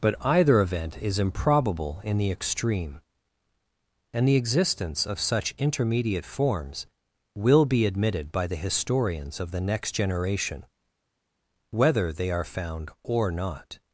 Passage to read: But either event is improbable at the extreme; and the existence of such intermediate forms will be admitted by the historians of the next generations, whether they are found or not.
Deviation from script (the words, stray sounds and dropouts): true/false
true